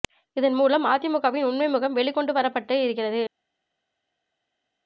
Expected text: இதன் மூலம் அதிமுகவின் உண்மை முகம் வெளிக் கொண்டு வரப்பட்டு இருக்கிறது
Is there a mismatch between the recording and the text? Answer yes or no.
no